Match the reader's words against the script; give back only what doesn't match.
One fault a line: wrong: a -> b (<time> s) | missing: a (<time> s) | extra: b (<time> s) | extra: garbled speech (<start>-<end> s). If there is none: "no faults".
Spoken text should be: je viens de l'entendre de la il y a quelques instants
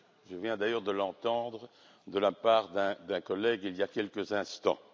extra: d'ailleurs (0.6 s)
extra: part d'un collègue (2.3 s)